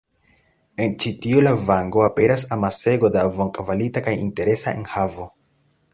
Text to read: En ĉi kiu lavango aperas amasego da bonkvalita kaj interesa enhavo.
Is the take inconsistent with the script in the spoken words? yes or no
yes